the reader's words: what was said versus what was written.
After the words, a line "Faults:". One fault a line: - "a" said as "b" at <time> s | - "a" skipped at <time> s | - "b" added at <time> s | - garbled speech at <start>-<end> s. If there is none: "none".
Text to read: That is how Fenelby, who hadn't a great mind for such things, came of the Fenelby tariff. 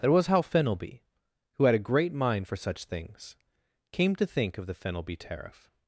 That was how Fenelby, who had a great mind for such things, came to think of the Fenelby tariff.
Faults:
- "is" said as "was" at 0.1 s
- "hadn't" said as "had" at 1.6 s
- "to think" added at 4.1 s